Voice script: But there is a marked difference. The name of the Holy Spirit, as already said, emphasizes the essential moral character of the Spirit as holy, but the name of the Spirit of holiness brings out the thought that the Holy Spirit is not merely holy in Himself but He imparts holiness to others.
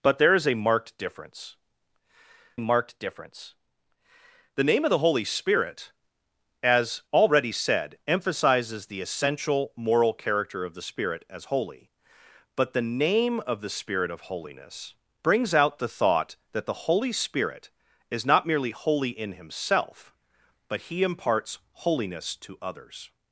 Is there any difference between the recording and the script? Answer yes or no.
yes